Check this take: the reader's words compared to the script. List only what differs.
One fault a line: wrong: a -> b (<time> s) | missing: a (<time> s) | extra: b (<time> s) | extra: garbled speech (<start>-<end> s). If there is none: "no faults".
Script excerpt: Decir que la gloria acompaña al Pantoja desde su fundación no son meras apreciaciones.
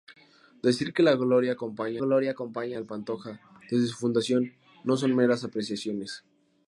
extra: gloria acompaña (2.0 s)